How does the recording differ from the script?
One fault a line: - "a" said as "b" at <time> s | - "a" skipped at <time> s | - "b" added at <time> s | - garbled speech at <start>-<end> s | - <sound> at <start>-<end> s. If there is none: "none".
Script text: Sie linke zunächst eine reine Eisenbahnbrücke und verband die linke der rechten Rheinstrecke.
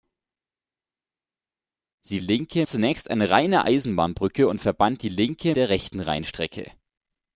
none